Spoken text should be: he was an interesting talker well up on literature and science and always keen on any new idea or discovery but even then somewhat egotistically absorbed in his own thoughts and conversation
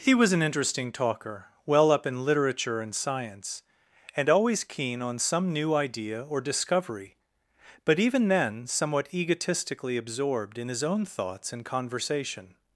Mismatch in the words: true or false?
true